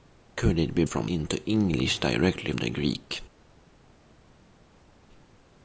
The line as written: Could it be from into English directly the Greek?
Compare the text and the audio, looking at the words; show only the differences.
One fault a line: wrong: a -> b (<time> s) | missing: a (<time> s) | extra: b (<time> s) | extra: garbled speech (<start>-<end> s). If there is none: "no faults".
no faults